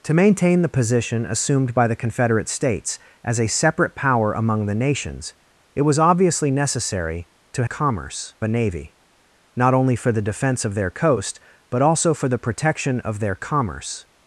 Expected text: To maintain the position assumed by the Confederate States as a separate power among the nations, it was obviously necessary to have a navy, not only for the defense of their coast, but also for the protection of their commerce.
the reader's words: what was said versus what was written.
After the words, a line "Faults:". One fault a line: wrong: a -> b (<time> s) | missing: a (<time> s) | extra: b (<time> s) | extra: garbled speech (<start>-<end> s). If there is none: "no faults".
To maintain the position assumed by the Confederate States as a separate power among the nations, it was obviously necessary to commerce a navy, not only for the defense of their coast, but also for the protection of their commerce.
Faults:
wrong: have -> commerce (7.6 s)